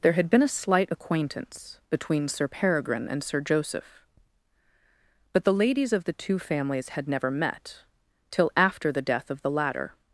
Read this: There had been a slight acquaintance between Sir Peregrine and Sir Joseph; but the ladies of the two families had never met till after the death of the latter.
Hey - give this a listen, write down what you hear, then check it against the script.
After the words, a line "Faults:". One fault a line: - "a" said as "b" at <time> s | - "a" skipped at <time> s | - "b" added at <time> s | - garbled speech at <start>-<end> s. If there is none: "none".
There had been a slight acquaintance between Sir Peregrine and Sir Joseph; but the ladies of the two families had never met till after the death of the latter.
Faults:
none